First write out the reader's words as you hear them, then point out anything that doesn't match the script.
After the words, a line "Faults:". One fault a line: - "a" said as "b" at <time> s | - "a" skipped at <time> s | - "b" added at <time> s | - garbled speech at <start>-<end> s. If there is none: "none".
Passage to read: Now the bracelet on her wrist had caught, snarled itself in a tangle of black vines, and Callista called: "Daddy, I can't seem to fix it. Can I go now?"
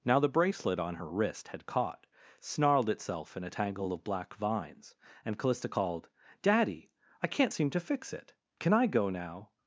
Now the bracelet on her wrist had caught, snarled itself in a tangle of black vines, and Callista called: "Daddy, I can't seem to fix it. Can I go now?"
Faults:
none